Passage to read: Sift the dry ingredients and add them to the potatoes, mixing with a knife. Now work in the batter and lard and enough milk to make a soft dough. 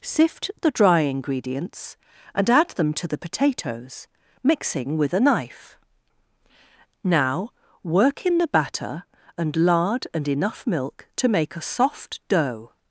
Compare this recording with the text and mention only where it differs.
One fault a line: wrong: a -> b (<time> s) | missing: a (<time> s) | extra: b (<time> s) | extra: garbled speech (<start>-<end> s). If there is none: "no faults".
no faults